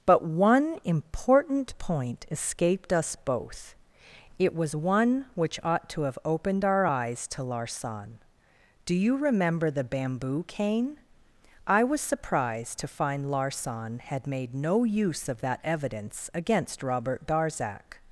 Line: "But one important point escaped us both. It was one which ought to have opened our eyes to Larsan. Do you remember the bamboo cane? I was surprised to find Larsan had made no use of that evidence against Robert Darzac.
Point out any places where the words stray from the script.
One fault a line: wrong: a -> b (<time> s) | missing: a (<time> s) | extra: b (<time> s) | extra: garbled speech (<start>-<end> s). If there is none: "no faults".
no faults